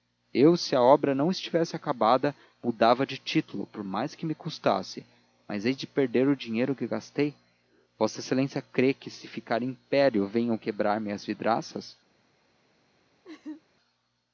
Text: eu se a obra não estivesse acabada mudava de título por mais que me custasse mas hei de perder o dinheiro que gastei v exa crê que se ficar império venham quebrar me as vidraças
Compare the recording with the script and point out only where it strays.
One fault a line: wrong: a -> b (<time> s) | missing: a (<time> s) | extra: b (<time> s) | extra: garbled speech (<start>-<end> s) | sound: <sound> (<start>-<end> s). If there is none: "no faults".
sound: laugh (13.2-13.6 s)